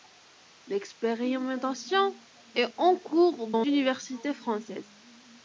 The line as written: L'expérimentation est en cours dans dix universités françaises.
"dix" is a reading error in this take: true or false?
true